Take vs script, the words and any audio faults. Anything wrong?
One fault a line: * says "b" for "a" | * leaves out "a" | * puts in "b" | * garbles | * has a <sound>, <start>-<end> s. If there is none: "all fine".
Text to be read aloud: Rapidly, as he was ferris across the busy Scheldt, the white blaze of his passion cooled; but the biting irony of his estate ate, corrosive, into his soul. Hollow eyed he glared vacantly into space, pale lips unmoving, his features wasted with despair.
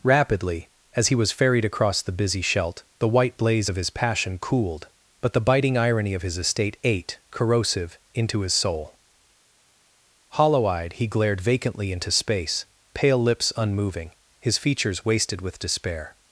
* says "ferried" for "ferris"